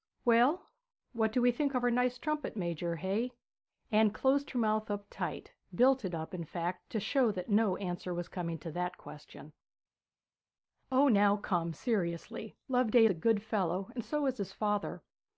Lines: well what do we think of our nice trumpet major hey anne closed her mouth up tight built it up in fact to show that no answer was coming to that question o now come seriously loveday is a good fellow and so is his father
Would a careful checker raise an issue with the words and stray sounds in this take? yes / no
yes